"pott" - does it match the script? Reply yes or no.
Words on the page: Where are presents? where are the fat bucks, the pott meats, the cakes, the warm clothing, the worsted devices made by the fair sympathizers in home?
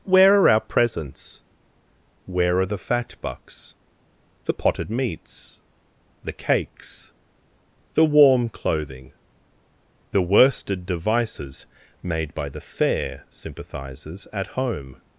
no